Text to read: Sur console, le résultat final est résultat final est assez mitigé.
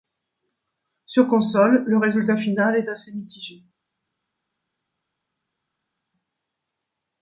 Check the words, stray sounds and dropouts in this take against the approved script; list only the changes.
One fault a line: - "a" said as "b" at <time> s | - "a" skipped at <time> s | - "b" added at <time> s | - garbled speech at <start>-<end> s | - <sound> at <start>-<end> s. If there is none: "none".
- "résultat final est" skipped at 2.9 s